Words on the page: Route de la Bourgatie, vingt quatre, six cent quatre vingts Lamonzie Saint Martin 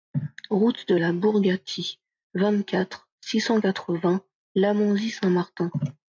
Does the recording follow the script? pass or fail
pass